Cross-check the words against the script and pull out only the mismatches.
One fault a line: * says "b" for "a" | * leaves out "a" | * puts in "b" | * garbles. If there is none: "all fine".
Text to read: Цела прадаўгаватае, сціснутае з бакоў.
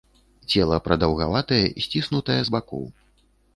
all fine